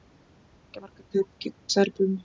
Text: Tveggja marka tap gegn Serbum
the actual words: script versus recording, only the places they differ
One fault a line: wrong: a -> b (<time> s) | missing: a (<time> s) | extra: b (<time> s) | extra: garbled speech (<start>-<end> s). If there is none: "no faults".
no faults